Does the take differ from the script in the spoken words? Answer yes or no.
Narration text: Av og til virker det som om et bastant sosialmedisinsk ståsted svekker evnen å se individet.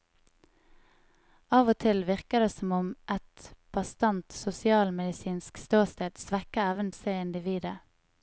no